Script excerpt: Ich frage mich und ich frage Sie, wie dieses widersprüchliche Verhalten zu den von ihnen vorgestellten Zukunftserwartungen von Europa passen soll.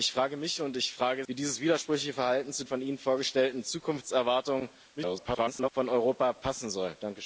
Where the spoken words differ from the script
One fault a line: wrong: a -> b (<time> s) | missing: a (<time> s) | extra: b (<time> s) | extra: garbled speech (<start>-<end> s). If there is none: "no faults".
missing: Sie (1.2 s)
missing: den (2.6 s)
extra: garbled speech (5.0-5.7 s)